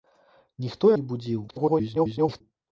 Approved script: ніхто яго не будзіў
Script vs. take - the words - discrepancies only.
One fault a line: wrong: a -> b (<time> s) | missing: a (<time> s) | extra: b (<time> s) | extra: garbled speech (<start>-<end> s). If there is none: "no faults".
missing: яго (0.9 s)
extra: garbled speech (1.5-2.4 s)